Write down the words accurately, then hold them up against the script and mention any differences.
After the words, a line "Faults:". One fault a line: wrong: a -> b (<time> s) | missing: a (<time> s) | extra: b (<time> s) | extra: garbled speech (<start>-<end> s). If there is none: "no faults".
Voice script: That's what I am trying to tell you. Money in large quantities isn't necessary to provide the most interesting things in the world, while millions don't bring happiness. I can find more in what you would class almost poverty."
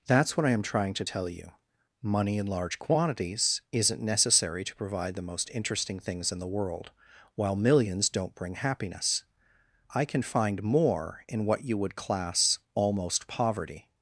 That's what I am trying to tell you. Money in large quantities isn't necessary to provide the most interesting things in the world, while millions don't bring happiness. I can find more in what you would class almost poverty."
Faults:
no faults